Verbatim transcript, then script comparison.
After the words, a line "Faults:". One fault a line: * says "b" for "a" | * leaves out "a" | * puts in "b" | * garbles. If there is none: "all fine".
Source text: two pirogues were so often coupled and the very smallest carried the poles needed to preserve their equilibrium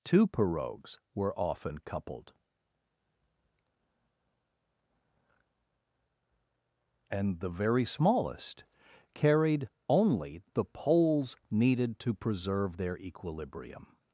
two pirogues were often coupled and the very smallest carried only the poles needed to preserve their equilibrium
Faults:
* leaves out "so"
* puts in "only"